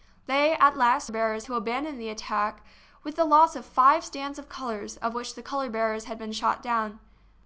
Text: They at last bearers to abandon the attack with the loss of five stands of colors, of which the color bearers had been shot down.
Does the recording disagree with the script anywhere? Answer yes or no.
no